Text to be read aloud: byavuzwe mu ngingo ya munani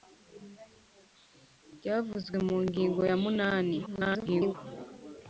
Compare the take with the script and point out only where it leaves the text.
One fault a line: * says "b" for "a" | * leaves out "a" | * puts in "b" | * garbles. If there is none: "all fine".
* garbles